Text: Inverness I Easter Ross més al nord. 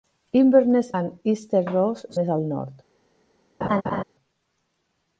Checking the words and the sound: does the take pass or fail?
fail